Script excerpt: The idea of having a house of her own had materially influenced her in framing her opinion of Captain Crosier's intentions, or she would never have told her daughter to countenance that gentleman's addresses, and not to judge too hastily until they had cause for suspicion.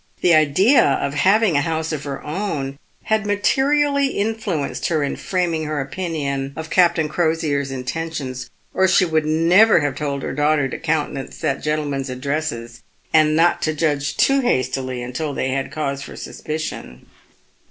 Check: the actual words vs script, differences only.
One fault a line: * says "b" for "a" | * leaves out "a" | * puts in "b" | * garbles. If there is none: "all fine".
all fine